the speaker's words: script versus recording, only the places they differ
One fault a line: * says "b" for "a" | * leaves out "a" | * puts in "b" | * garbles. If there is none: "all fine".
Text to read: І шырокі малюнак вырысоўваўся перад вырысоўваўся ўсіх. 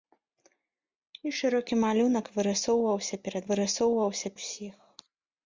all fine